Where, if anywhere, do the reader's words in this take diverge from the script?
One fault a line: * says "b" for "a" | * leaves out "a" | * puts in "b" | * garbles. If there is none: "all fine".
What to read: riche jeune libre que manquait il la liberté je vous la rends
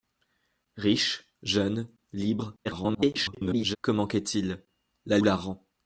* garbles
* leaves out "liberté je vous"